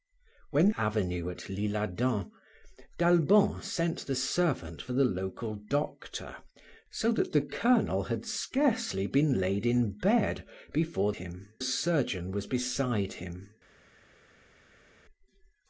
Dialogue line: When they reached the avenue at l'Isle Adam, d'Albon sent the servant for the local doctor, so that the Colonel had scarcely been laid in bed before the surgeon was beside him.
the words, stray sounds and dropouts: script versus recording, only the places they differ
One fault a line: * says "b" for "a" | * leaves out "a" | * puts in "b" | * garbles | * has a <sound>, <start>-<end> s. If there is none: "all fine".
* leaves out "they reached the"
* says "him" for "the"